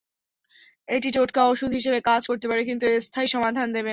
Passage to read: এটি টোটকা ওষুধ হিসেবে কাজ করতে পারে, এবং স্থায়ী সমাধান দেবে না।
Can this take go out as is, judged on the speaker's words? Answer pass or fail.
fail